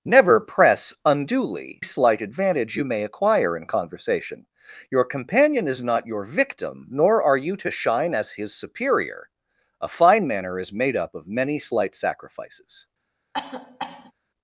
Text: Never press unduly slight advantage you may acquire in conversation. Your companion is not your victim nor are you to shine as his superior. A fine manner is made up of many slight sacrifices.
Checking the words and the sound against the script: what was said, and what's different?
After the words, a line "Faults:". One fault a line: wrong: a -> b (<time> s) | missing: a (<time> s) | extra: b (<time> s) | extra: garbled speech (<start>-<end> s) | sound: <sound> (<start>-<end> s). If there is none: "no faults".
Never press unduly slight advantage you may acquire in conversation. Your companion is not your victim nor are you to shine as his superior. A fine manner is made up of many slight sacrifices.
Faults:
sound: cough (13.3-14.1 s)